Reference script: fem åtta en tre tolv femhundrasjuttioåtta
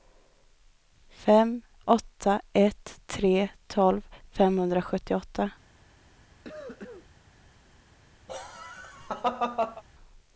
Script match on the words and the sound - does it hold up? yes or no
no